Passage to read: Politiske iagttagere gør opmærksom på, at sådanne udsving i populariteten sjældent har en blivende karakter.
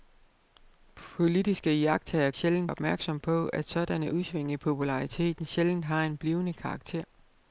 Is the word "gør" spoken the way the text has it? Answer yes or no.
no